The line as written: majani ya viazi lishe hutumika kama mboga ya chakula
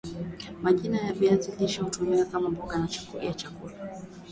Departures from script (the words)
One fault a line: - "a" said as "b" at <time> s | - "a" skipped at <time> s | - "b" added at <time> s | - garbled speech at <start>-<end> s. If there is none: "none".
none